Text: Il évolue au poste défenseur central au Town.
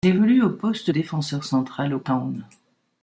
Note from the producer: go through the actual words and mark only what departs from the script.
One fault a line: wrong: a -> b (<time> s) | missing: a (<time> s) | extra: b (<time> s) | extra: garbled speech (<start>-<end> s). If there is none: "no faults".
no faults